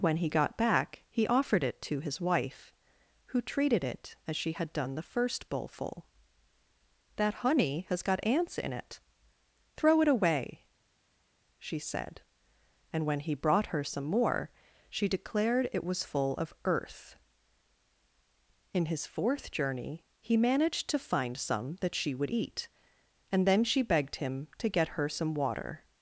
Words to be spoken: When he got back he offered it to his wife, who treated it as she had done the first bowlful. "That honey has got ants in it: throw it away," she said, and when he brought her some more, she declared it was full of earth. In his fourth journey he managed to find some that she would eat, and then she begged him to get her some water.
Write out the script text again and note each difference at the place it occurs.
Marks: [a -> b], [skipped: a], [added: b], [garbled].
When he got back he offered it to his wife, who treated it as she had done the first bowlful. "That honey has got ants in it: throw it away," she said, and when he brought her some more, she declared it was full of earth. In his fourth journey he managed to find some that she would eat, and then she begged him to get her some water.